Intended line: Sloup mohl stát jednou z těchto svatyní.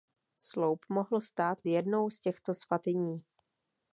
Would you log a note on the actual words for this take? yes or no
no